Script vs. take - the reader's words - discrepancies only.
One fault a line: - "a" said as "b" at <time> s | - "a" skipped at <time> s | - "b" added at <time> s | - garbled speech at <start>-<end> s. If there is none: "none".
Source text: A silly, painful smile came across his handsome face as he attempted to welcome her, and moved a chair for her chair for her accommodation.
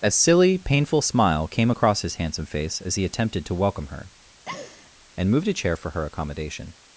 - "chair for her" skipped at 6.0 s